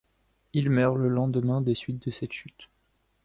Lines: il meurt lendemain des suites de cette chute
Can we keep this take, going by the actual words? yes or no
no